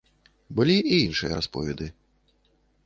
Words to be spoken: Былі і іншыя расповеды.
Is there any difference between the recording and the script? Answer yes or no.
no